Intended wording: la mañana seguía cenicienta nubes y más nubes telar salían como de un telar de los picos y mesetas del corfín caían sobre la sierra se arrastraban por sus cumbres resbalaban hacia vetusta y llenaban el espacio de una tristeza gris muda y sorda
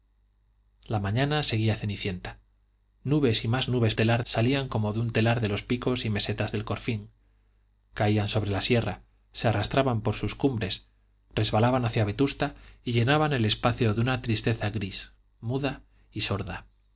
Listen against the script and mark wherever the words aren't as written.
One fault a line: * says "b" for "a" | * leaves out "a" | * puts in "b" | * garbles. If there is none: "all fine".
all fine